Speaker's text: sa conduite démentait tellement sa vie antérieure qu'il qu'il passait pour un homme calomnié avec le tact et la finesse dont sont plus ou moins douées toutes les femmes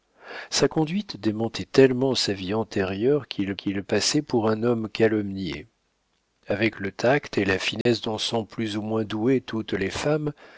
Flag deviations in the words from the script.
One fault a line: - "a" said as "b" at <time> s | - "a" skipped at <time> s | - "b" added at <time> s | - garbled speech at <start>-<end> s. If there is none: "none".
none